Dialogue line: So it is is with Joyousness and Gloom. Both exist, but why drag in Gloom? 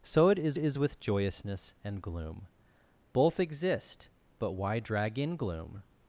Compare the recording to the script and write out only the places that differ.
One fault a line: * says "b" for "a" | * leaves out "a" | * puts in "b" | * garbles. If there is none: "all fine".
all fine